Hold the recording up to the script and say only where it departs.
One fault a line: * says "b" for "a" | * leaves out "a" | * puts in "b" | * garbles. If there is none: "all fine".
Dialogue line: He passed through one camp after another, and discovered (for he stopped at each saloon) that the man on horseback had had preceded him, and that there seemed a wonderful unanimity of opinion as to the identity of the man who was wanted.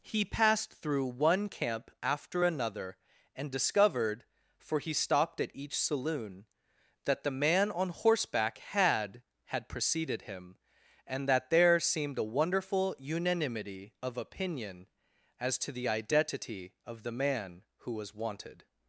all fine